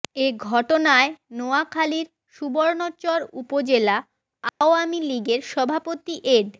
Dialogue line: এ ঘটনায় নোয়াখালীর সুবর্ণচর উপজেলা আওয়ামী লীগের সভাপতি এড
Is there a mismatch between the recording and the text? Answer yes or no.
no